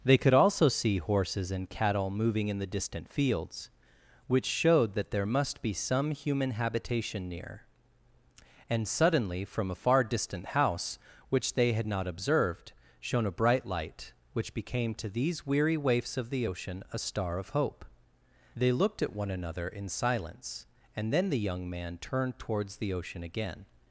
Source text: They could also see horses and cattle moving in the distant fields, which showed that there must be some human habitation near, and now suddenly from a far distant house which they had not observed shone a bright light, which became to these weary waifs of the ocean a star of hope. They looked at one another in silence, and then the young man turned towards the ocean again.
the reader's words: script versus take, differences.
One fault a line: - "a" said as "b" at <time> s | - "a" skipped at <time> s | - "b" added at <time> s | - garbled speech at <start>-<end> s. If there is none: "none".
- "now" skipped at 8.9 s